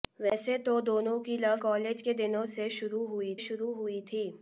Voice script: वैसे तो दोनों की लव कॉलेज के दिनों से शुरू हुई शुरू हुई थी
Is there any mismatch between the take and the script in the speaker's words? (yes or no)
no